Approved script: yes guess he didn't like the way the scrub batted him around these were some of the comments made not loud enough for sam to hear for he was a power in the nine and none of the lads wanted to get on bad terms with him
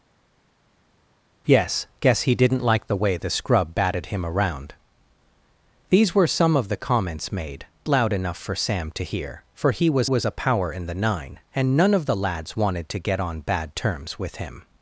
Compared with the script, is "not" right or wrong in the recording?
wrong